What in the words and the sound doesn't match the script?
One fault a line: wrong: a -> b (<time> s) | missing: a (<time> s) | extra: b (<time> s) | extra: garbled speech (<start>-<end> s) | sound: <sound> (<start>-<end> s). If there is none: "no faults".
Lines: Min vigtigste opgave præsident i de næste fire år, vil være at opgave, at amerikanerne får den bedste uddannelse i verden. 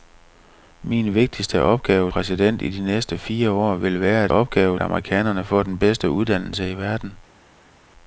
no faults